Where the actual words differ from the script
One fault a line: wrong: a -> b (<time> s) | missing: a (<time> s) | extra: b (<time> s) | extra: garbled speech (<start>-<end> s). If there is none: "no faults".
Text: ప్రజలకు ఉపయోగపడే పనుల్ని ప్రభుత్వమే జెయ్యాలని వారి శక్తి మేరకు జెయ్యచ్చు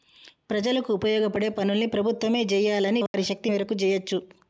no faults